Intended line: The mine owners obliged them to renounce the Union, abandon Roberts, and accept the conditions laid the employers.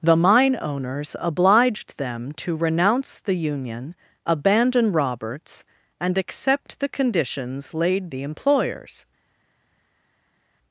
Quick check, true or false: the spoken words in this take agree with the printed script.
true